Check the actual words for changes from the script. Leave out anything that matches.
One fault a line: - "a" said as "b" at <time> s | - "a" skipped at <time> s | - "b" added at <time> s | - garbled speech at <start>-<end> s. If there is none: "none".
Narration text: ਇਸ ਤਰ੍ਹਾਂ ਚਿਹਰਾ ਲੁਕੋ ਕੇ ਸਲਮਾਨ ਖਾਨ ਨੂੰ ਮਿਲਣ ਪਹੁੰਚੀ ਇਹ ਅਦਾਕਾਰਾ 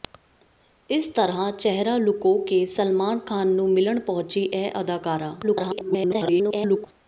- garbled speech at 5.4-6.9 s